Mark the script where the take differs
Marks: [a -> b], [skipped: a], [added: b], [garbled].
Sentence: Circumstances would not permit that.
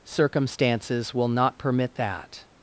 Circumstances [would -> will] not permit that.